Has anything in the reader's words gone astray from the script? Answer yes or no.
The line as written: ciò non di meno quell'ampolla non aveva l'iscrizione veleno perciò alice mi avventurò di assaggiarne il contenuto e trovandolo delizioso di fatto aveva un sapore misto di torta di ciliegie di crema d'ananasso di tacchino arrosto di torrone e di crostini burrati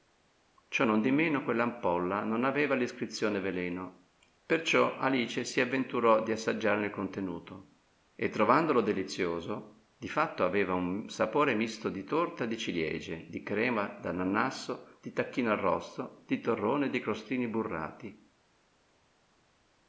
yes